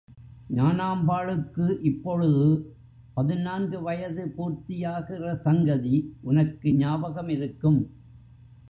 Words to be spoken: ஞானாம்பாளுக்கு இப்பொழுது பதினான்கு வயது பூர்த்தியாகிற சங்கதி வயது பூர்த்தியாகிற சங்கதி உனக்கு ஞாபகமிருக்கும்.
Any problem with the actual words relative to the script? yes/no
yes